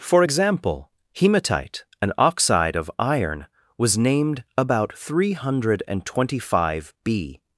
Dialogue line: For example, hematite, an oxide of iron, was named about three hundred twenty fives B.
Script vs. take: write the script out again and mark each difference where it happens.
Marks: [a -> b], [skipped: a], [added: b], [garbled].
For example, hematite, an oxide of iron, was named about three hundred twenty [fives -> five] B.